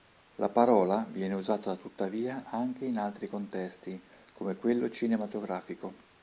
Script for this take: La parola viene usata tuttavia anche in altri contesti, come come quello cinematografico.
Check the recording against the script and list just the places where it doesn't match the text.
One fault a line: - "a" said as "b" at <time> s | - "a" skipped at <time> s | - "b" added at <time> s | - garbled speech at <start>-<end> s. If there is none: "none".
- "come" skipped at 4.5 s